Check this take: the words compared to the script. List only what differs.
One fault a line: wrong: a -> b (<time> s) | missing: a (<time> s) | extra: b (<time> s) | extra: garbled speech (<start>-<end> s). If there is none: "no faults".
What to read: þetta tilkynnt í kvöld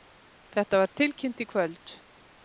extra: var (0.8 s)